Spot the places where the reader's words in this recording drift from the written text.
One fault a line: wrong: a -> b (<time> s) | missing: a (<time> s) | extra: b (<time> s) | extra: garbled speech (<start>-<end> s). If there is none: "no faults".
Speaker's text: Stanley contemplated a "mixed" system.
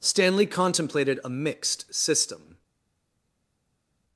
no faults